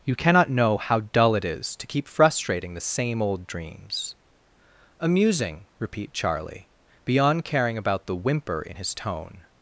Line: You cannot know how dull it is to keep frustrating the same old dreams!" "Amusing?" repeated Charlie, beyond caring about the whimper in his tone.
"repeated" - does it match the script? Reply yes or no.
no